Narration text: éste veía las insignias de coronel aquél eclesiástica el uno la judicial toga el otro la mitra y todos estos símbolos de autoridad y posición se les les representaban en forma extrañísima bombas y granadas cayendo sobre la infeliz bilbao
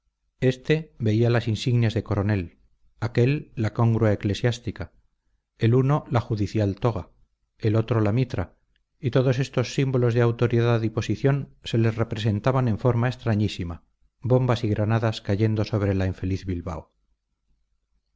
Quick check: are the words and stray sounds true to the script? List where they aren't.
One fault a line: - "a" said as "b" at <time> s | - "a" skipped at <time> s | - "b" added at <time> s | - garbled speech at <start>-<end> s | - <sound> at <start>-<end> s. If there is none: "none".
- "la congrua" added at 3.5 s
- "les" skipped at 11.9 s